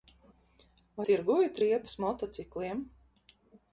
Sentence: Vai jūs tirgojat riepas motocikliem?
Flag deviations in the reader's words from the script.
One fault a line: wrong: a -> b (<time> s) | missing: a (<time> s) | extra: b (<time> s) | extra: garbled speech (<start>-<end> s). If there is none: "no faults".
missing: jūs (1.1 s)